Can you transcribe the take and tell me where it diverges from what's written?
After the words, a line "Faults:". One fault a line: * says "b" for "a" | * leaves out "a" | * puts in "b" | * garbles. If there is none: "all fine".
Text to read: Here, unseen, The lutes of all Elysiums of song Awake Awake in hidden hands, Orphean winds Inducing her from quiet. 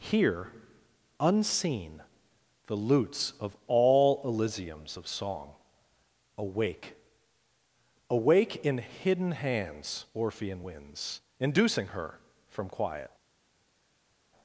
Here, unseen, The lutes of all Elysiums of song Awake Awake in hidden hands, Orphean winds Inducing her from quiet.
Faults:
all fine